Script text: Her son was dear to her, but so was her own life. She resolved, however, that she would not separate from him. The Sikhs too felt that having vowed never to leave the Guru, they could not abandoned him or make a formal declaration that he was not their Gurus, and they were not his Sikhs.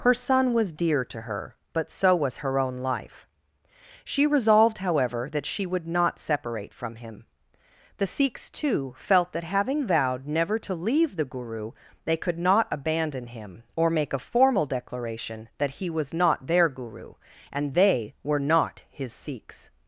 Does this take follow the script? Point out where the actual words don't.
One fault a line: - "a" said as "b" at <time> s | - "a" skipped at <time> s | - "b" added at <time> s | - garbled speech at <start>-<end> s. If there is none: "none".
- "abandoned" said as "abandon" at 12.7 s
- "Gurus" said as "Guru" at 16.7 s